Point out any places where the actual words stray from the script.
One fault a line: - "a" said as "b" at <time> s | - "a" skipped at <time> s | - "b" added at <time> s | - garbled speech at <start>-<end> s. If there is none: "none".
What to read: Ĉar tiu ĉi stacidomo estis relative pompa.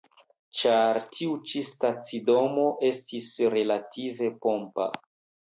none